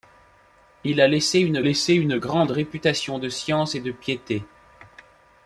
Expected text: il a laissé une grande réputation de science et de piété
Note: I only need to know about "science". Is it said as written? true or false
true